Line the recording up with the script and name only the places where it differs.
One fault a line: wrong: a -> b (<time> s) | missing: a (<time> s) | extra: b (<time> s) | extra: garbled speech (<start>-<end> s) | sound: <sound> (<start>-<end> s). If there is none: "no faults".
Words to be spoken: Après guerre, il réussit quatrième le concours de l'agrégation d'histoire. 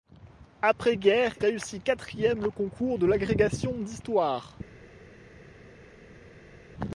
missing: il (1.4 s)